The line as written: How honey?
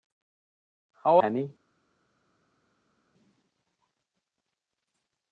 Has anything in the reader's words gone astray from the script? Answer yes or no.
no